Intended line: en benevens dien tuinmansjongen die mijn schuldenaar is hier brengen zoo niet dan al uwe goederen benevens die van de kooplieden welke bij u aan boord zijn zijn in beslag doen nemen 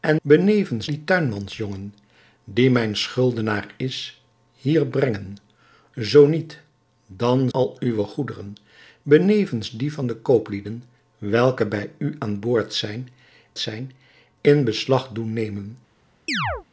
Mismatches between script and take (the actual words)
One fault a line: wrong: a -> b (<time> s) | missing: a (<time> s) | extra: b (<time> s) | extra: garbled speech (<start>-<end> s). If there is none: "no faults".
no faults